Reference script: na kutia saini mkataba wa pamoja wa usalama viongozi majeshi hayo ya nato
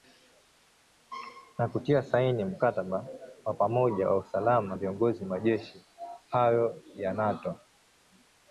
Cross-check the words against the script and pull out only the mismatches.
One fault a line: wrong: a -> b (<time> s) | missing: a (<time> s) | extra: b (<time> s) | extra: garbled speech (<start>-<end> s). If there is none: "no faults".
no faults